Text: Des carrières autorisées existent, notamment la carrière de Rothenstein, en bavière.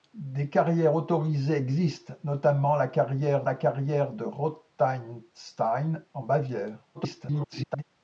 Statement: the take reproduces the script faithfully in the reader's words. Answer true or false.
false